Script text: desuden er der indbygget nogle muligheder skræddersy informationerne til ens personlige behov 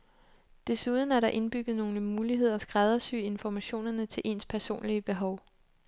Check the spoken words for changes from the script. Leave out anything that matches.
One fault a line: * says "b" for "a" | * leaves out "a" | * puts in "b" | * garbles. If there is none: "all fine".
all fine